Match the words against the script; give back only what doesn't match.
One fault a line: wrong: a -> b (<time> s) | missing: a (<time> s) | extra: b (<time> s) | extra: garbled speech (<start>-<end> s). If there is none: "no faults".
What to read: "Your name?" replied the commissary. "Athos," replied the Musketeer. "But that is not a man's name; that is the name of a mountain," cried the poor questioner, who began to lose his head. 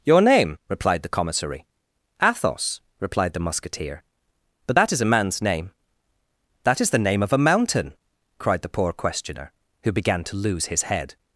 missing: not (5.0 s)